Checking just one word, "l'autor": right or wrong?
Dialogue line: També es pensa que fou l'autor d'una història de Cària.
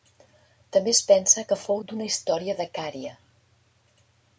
wrong